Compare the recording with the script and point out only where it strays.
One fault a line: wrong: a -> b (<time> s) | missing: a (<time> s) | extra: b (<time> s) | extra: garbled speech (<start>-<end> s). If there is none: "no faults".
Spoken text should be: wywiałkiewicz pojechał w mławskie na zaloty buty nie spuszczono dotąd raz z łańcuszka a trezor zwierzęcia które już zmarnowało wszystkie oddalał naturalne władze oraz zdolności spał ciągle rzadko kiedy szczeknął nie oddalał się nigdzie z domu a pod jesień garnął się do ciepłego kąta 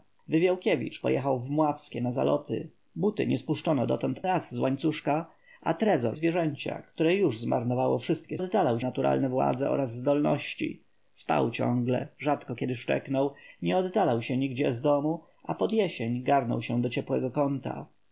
no faults